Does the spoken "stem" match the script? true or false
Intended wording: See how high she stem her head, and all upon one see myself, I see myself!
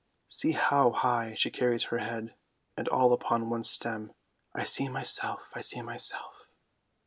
false